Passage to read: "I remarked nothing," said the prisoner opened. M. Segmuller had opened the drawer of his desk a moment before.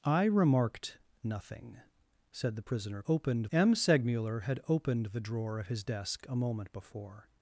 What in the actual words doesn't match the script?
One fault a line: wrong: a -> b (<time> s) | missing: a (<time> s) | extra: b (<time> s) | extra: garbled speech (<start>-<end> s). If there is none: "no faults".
no faults